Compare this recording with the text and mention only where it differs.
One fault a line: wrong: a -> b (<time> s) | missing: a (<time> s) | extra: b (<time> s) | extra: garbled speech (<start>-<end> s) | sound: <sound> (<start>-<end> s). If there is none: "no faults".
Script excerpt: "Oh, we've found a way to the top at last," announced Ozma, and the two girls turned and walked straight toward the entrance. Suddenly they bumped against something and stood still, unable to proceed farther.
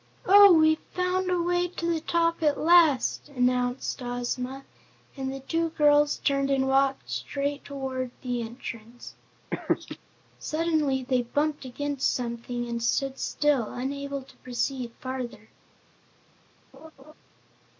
sound: laugh (9.5-10.0 s)
sound: laugh (16.7-17.1 s)